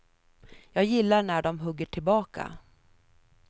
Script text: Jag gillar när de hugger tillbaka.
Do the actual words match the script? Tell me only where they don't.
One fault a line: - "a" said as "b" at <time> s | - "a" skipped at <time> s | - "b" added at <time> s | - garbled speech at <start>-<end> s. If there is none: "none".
none